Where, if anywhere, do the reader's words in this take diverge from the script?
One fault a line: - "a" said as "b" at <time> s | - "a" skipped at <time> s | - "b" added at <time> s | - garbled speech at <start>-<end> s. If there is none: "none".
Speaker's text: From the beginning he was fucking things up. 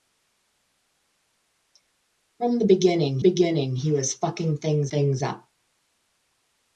- "beginning" added at 3.2 s
- "things" added at 4.9 s